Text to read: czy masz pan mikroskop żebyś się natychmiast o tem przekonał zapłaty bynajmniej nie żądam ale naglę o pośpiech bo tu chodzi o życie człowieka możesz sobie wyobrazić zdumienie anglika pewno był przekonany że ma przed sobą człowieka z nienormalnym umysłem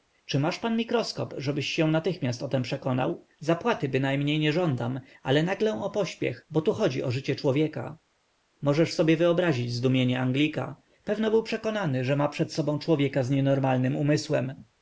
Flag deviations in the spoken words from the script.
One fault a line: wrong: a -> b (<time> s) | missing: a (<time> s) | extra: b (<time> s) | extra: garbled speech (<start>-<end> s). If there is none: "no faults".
no faults